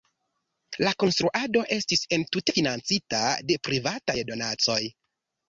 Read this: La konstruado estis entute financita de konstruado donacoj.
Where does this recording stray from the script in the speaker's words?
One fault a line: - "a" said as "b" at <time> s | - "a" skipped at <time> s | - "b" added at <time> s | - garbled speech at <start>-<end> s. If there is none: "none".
- "konstruado" said as "privataj" at 3.7 s